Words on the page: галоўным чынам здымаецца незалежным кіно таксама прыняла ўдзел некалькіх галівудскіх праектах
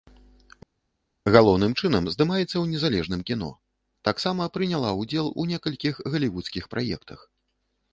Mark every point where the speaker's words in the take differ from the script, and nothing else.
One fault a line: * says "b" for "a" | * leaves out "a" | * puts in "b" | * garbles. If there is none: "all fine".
* puts in "ў"
* puts in "у"